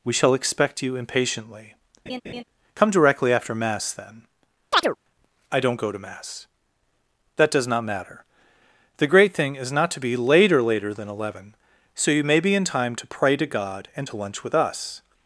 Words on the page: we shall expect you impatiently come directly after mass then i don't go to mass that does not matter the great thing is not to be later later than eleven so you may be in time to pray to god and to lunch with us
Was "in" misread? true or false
false